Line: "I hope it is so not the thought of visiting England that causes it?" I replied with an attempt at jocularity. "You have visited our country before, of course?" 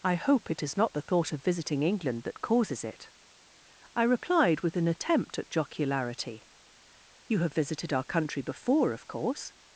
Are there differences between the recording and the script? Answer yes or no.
yes